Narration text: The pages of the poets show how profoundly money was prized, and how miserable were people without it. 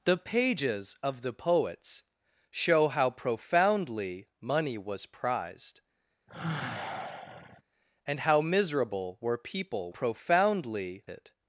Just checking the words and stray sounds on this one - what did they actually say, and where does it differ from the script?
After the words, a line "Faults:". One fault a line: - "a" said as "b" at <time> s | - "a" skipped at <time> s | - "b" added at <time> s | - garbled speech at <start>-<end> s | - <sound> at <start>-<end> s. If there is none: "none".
The pages of the poets show how profoundly money was prized, and how miserable were people profoundly it.
Faults:
- sigh at 6.3-7.6 s
- "without" said as "profoundly" at 9.9 s